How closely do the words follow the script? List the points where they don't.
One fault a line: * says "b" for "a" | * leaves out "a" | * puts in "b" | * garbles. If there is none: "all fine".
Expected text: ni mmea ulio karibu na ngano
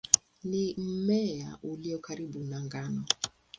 all fine